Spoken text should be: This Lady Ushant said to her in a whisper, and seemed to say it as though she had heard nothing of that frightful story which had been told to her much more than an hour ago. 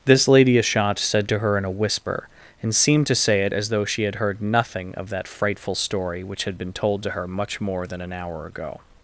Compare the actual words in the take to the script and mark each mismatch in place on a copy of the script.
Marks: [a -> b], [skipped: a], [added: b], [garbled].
This Lady Ushant said to her in a whisper, and seemed to say it as though she had heard nothing of that frightful story which had been told to her much more than an hour ago.